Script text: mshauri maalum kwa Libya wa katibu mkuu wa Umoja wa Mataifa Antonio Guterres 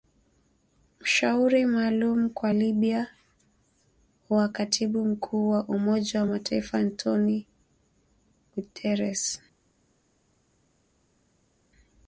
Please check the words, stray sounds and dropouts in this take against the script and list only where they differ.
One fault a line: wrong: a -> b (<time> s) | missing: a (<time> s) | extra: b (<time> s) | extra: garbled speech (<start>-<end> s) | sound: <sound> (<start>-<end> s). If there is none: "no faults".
no faults